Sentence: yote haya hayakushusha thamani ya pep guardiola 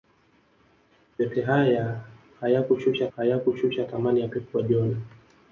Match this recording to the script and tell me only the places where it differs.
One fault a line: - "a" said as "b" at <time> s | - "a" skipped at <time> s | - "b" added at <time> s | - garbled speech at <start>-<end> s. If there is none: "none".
- "hayakushusha" added at 3.1 s